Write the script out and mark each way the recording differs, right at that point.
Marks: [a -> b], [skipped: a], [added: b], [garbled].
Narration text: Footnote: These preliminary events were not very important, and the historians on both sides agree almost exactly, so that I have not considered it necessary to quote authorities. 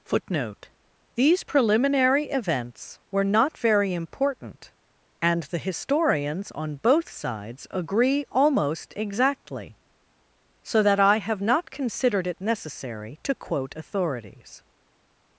Footnote: These preliminary events were not very important, and the historians on both sides agree almost exactly, so that I have not considered it necessary to quote authorities.